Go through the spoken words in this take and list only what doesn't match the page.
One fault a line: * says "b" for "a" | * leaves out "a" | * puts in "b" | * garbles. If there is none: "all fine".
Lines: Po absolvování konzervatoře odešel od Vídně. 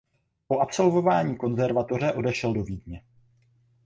* says "do" for "od"